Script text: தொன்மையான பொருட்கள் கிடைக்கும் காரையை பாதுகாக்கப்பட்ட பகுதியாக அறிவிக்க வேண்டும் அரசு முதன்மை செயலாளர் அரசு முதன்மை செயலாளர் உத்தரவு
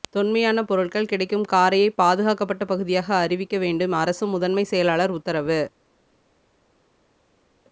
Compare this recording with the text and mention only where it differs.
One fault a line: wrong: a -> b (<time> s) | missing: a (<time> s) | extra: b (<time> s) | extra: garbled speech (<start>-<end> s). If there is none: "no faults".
missing: அரசு முதன்மை செயலாளர் (5.1 s)